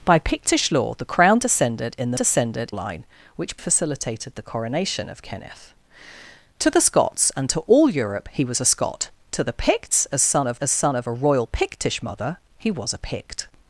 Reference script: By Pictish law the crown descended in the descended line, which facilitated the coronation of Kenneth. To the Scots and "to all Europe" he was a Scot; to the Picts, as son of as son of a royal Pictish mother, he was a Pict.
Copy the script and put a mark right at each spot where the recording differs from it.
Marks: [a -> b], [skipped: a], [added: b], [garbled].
By Pictish law the crown descended in the descended line, which facilitated the coronation of Kenneth. To the Scots and "to all Europe" he was a Scot; to the Picts, as son of as son of a royal Pictish mother, he was a Pict.